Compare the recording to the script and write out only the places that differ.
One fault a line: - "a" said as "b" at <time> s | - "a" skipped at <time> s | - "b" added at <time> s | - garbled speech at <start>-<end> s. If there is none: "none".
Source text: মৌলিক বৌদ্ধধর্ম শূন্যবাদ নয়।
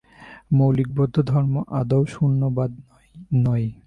- "আদৌ" added at 1.8 s